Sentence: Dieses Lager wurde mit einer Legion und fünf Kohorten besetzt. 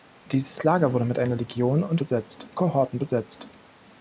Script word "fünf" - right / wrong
wrong